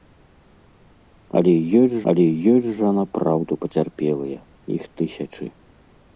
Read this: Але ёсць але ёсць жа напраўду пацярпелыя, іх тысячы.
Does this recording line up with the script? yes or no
yes